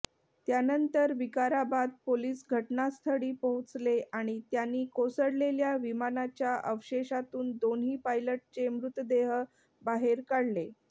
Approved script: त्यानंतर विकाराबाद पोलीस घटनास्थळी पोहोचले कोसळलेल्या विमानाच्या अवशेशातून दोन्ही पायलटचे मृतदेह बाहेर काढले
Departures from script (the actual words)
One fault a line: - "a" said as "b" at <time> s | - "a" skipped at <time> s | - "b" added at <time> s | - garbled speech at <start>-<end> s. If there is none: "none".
- "आणि त्यांनी" added at 4.1 s